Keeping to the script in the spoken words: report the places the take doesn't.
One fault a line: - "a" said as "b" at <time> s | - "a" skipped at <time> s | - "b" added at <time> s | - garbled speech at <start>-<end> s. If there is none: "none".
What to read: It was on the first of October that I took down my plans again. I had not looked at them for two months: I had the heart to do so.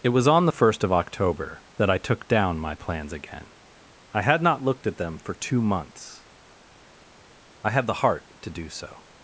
none